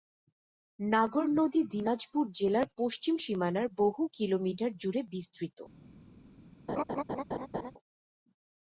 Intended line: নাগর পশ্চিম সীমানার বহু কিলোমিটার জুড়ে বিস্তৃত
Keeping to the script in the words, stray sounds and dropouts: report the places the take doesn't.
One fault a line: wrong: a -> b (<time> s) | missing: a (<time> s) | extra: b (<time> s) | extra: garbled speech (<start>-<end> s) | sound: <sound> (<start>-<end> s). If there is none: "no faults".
extra: নদী দিনাজপুর জেলার (1.4 s)
sound: laugh (6.7-7.7 s)